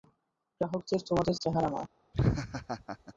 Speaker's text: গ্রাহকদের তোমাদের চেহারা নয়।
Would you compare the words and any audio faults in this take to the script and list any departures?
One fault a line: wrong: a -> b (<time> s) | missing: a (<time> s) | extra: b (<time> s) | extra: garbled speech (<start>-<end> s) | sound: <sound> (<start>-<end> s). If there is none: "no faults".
sound: laugh (2.1-3.1 s)